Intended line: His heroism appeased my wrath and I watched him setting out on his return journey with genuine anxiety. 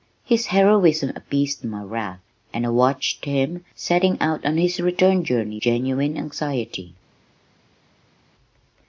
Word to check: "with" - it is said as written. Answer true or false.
false